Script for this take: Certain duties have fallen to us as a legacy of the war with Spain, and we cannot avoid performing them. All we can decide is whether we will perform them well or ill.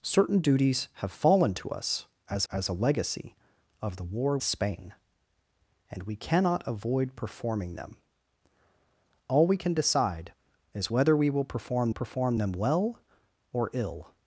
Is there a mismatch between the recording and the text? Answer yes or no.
yes